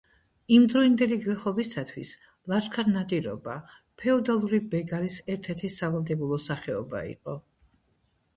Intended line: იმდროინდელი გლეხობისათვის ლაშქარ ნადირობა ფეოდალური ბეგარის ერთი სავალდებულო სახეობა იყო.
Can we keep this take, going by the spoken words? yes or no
no